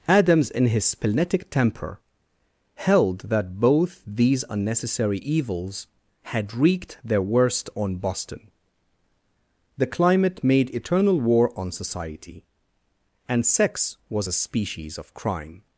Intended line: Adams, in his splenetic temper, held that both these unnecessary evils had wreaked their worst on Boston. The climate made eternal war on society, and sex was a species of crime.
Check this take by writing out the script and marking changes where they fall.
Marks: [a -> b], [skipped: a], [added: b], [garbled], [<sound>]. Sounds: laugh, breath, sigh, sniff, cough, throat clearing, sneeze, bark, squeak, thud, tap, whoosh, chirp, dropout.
Adams, in his splenetic temper, held that both these unnecessary evils had wreaked their worst on Boston. The climate made eternal war on society, and sex was a species of crime.